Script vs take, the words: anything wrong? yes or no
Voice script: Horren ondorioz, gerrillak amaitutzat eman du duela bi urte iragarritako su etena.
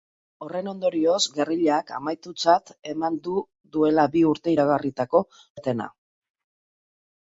yes